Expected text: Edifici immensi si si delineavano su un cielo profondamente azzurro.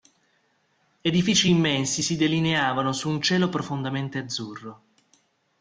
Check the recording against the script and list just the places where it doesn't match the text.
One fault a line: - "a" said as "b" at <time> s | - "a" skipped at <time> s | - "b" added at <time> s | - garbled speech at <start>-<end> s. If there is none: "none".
- "si" skipped at 2.1 s